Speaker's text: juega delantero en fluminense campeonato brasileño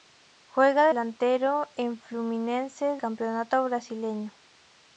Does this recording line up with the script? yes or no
yes